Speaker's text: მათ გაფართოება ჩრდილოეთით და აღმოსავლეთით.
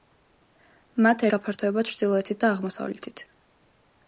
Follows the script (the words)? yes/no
yes